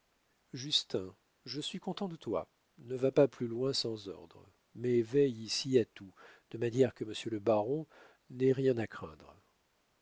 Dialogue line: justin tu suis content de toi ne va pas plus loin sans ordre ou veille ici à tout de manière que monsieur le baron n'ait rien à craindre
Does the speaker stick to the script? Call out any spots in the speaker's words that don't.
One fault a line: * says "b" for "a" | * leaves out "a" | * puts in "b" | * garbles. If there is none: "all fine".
* says "je" for "tu"
* says "mais" for "ou"